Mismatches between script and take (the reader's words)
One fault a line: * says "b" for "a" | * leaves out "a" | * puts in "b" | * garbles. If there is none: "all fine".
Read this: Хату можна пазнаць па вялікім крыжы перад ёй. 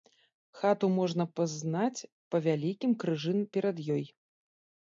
all fine